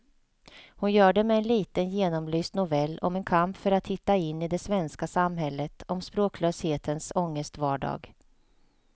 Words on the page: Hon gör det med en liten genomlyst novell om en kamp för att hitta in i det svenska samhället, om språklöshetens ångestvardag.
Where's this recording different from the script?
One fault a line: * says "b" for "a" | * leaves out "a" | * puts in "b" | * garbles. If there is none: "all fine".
all fine